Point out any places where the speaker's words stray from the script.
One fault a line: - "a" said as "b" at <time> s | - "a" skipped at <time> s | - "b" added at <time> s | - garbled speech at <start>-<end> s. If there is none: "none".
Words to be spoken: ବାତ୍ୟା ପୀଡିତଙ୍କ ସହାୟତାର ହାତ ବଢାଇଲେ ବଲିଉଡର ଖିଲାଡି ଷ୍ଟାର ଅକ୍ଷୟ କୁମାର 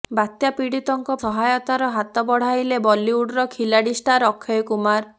none